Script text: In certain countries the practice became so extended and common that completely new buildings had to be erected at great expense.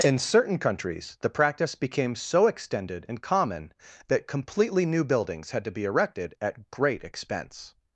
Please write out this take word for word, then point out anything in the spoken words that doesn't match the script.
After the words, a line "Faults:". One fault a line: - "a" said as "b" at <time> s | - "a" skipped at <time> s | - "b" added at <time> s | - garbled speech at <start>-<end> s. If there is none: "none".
In certain countries the practice became so extended and common that completely new buildings had to be erected at great expense.
Faults:
none